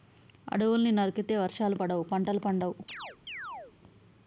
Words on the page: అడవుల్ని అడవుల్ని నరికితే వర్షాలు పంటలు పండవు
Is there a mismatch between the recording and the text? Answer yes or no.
yes